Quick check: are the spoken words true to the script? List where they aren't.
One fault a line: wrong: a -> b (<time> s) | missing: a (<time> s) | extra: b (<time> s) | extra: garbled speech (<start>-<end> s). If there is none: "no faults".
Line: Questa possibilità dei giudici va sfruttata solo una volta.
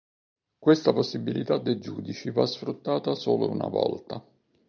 no faults